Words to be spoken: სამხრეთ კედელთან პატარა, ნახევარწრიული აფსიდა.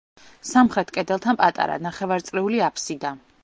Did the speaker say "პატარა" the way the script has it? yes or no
yes